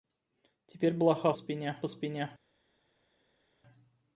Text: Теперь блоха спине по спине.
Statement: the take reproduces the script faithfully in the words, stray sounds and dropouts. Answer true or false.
true